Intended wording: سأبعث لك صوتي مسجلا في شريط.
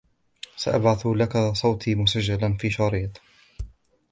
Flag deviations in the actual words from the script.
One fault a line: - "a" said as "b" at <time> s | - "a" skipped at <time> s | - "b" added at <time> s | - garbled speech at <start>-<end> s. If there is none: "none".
none